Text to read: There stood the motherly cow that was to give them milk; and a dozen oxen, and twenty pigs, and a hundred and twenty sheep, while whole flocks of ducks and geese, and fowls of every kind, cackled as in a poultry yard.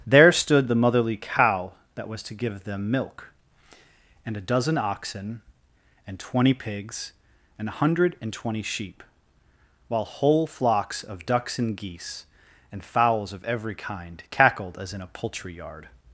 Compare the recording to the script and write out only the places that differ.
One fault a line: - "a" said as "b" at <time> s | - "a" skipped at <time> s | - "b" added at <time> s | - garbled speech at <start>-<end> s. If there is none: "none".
none